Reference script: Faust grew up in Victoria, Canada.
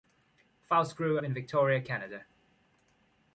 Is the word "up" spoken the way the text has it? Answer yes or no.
no